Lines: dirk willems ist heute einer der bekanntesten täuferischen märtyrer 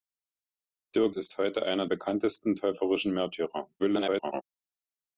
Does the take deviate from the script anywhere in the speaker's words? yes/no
yes